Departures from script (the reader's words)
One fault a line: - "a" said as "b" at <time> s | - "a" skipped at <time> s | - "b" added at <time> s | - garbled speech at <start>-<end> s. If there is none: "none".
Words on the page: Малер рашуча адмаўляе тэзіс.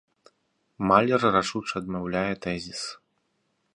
none